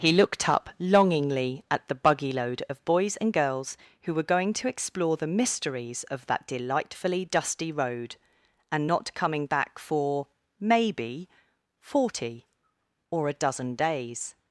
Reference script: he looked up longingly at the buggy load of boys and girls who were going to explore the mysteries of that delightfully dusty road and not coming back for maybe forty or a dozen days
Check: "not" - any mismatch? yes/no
no